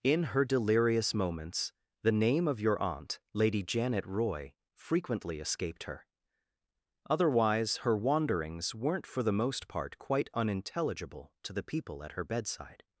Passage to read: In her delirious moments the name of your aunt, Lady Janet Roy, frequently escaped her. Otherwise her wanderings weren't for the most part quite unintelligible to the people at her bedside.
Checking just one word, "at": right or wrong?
right